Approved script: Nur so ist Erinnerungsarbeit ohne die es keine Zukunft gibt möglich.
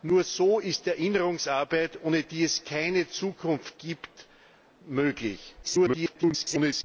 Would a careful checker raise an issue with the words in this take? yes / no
yes